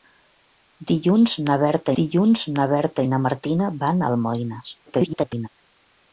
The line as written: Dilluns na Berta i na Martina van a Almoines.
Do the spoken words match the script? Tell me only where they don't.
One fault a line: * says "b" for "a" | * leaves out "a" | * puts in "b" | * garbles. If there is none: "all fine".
* puts in "dilluns na Berta"
* garbles